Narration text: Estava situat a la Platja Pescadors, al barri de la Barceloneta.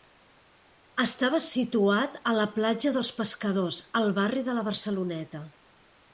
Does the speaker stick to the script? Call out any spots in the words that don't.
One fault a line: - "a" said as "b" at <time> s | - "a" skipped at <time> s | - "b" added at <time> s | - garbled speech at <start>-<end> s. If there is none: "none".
- "dels" added at 3.0 s